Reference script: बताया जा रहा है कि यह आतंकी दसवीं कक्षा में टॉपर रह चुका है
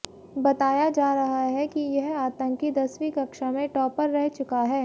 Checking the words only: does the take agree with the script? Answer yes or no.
yes